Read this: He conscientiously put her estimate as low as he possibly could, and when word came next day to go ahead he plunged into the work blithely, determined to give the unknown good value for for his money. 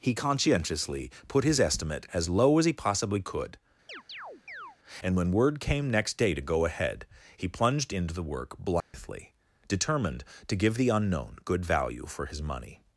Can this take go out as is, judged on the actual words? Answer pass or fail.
fail